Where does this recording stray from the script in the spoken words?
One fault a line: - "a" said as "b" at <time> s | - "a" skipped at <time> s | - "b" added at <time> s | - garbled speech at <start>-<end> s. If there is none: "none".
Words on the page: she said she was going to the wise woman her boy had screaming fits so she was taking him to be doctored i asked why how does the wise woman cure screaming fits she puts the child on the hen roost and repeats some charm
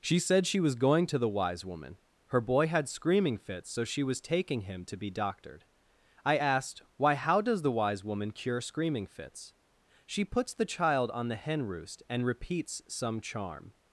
none